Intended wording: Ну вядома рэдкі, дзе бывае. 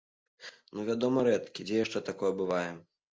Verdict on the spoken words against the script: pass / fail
fail